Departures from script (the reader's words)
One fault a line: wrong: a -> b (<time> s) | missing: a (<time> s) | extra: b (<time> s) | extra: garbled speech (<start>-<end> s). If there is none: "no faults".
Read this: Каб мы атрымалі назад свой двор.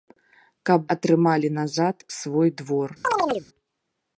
missing: мы (0.9 s)